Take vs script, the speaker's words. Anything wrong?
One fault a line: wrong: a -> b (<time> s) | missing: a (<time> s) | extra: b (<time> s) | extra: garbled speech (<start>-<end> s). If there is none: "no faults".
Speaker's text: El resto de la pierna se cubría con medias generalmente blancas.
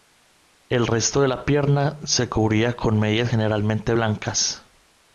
no faults